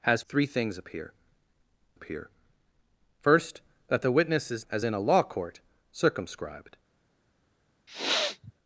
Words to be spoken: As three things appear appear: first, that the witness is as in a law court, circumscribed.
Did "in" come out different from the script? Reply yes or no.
no